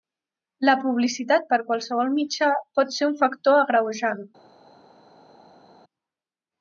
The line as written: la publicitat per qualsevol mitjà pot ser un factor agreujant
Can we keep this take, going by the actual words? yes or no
yes